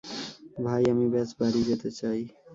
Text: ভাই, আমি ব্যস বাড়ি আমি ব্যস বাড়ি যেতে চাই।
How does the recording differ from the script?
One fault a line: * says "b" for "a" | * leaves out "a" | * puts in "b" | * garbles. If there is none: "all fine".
* leaves out "আমি ব্যস বাড়ি"